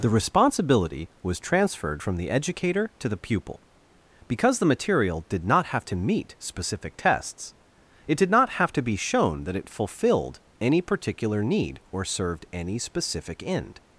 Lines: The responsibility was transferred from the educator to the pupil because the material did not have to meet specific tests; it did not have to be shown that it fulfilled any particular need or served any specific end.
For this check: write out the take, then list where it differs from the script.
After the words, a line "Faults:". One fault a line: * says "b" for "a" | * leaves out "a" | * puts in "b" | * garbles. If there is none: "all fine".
The responsibility was transferred from the educator to the pupil because the material did not have to meet specific tests; it did not have to be shown that it fulfilled any particular need or served any specific end.
Faults:
all fine